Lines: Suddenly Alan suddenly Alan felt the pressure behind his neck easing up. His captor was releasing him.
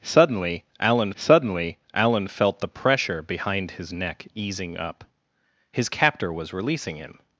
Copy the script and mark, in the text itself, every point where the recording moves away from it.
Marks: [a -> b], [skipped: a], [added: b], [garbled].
Suddenly Alan suddenly Alan felt the pressure behind his neck easing up. His captor was releasing him.